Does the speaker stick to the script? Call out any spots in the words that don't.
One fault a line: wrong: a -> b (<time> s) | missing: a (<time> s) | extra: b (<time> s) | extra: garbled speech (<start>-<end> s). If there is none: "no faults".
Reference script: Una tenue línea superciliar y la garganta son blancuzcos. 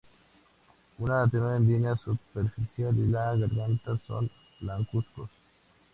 no faults